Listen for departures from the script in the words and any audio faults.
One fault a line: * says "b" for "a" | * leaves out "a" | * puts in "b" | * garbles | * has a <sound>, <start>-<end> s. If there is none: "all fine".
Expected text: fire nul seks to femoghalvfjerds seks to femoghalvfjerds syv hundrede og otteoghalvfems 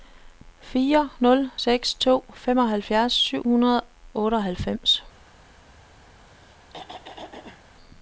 * leaves out "seks to femoghalvfjerds"
* has a throat clearing, 6.2-7.6 s